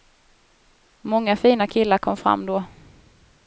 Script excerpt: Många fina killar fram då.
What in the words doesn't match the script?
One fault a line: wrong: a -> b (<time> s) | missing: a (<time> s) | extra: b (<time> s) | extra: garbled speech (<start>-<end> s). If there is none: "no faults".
extra: kom (2.0 s)